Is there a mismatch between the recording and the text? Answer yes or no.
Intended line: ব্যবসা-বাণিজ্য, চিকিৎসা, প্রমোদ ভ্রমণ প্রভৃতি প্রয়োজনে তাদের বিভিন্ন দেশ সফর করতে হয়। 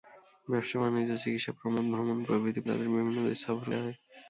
yes